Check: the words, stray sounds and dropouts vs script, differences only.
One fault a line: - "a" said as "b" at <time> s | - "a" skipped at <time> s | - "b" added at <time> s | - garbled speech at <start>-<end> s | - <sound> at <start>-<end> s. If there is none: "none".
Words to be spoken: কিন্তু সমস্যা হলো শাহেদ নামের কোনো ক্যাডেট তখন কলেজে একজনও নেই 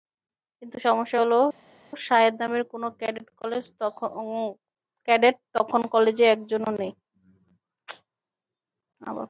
none